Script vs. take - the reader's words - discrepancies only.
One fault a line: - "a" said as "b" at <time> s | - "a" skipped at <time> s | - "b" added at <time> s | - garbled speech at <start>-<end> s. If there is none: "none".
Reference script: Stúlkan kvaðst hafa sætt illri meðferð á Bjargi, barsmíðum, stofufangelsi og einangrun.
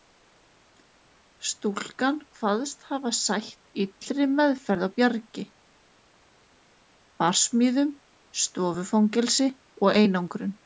none